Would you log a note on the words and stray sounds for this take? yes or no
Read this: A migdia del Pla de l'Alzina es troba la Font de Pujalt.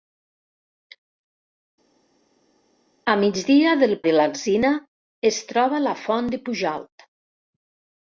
yes